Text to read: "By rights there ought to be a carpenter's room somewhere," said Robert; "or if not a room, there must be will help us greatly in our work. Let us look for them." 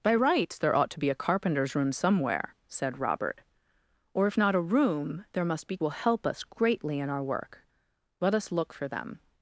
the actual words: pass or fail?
pass